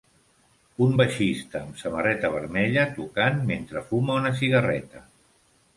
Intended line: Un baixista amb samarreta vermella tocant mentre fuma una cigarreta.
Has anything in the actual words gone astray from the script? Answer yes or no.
no